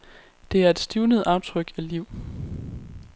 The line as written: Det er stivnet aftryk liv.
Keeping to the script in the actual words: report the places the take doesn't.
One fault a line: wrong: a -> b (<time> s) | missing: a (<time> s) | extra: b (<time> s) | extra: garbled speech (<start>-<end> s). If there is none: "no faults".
extra: et (0.7 s)
extra: af (1.8 s)